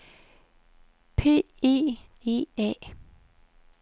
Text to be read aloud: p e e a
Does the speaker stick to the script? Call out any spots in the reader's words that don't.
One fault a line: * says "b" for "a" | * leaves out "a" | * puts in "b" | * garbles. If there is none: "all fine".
all fine